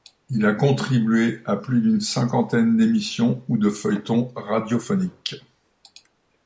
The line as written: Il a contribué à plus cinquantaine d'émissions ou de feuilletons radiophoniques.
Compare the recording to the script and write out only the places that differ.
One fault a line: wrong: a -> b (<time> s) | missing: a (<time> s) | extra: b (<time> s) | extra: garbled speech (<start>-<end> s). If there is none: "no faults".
extra: d'une (1.8 s)